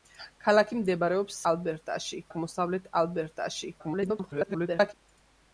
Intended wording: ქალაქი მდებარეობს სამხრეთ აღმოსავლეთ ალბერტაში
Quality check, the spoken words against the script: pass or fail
fail